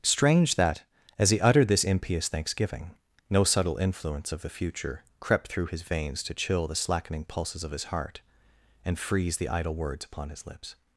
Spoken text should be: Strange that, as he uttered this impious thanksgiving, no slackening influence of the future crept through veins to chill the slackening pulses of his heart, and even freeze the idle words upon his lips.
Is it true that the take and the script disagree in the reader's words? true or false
true